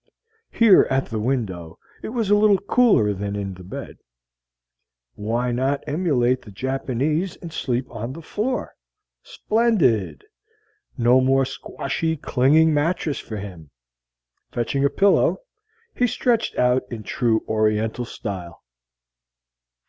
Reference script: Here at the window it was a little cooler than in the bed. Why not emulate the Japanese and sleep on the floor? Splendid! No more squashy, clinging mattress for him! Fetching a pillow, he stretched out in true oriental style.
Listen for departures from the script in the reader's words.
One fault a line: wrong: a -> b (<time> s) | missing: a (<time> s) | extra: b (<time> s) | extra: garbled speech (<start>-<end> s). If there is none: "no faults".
no faults